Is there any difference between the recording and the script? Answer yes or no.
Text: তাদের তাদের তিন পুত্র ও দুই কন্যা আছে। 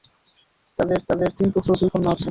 no